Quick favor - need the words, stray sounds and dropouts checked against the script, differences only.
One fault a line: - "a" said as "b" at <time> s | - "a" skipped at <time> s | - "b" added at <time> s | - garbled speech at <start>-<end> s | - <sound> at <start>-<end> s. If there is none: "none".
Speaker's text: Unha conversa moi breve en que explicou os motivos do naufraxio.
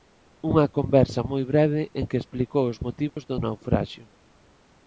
- dropout at 3.1-3.2 s